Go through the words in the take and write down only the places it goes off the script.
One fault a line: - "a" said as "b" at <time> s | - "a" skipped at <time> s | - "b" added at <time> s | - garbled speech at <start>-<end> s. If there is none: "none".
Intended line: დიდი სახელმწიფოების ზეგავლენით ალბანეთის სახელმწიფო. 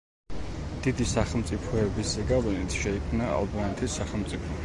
- "შეიქმნა" added at 2.8 s